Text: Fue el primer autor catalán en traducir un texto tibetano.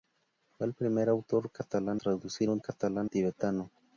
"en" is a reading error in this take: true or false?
true